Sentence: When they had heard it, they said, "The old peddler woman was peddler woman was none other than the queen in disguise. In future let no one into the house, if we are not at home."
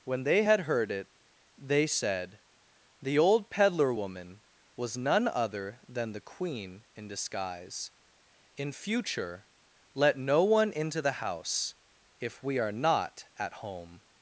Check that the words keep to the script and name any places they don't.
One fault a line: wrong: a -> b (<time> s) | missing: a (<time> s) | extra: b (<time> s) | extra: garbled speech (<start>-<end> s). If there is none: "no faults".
missing: peddler woman was (5.0 s)